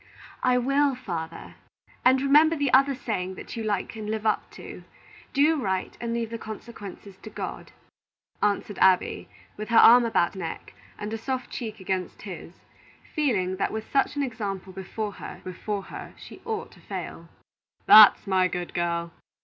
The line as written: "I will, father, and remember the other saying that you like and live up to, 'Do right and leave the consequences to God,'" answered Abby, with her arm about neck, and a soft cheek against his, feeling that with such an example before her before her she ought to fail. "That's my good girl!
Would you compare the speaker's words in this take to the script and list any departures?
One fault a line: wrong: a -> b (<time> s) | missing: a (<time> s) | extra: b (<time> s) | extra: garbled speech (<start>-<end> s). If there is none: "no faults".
no faults